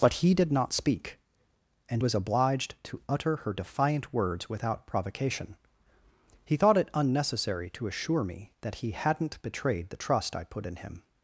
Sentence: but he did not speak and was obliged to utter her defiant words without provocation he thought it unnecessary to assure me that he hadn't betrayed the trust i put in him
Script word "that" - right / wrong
right